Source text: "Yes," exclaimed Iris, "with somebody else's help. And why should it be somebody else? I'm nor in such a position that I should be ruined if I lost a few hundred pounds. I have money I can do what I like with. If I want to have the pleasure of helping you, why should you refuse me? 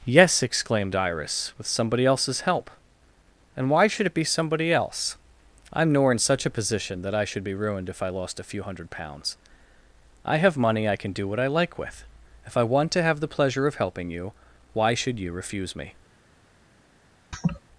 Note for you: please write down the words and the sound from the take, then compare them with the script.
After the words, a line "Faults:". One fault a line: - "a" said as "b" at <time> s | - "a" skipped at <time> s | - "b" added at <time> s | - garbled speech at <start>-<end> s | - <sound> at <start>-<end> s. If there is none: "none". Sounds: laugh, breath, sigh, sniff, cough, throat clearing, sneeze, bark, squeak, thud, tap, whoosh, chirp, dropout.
"Yes," exclaimed Iris, "with somebody else's help. And why should it be somebody else? I'm nor in such a position that I should be ruined if I lost a few hundred pounds. I have money I can do what I like with. If I want to have the pleasure of helping you, why should you refuse me?
Faults:
- laugh at 17.3-17.6 s